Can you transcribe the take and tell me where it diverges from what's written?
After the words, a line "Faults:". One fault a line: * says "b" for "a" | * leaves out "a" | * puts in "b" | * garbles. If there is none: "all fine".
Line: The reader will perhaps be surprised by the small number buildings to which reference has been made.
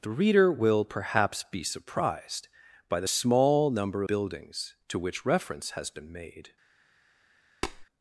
The reader will perhaps be surprised by the small number buildings to which reference has been made.
Faults:
all fine